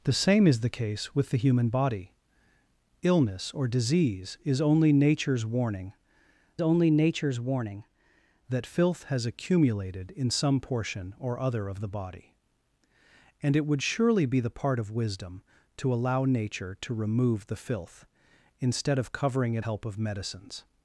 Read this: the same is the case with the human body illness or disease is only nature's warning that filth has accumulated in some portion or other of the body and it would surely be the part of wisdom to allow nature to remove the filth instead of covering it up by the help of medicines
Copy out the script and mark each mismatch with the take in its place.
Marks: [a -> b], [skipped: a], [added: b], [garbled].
the same is the case with the human body illness or disease is only nature's warning [added: only nature's warning] that filth has accumulated in some portion or other of the body and it would surely be the part of wisdom to allow nature to remove the filth instead of covering it [skipped: up by the] help of medicines